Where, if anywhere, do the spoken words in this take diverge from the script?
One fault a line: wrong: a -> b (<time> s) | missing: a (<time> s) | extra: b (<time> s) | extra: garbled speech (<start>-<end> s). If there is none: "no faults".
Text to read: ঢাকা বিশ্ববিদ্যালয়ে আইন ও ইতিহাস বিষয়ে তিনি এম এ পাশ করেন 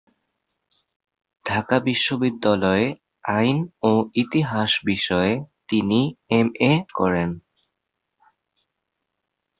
missing: পাশ (6.7 s)